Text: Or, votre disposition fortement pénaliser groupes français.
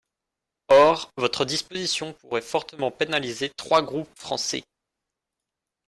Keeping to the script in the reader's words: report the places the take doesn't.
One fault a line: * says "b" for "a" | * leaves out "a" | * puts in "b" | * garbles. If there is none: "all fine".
* puts in "pourrait"
* puts in "trois"